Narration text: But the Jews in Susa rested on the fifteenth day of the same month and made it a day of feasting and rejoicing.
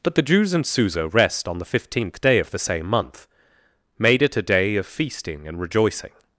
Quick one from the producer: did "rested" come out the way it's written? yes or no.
no